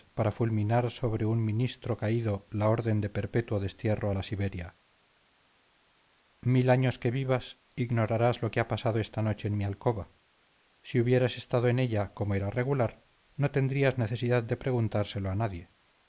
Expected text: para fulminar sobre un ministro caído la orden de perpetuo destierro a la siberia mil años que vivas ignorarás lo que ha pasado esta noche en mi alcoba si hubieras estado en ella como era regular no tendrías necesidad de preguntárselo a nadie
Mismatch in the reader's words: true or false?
false